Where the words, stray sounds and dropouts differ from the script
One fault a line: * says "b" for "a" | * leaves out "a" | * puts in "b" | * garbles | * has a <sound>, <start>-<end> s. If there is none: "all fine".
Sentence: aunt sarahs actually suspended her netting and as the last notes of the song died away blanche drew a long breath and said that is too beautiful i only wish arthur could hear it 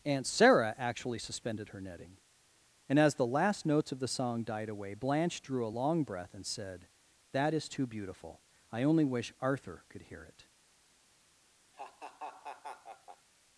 * says "sarah" for "sarahs"
* has a laugh, 11.7-13.3 s